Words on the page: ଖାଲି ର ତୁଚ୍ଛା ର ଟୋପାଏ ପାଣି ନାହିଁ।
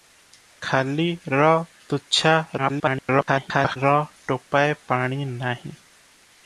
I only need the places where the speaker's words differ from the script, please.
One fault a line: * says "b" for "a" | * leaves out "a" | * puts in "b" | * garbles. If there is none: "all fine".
* garbles